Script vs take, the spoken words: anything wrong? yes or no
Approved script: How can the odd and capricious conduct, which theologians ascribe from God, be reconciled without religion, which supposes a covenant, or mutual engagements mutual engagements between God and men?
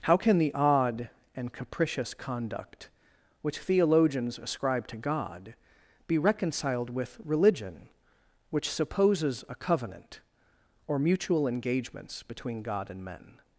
yes